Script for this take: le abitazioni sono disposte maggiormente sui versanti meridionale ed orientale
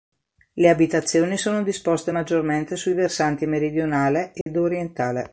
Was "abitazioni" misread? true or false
false